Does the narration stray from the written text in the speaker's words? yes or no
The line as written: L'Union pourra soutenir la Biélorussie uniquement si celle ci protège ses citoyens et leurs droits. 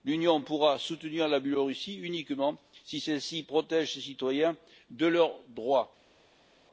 no